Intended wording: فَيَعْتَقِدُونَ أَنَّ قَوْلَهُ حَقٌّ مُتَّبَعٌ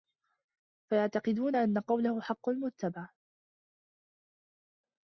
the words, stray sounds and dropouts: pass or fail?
pass